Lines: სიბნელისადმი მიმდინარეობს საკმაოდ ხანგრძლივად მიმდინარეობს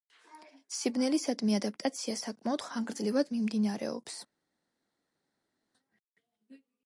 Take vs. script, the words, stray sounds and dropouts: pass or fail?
fail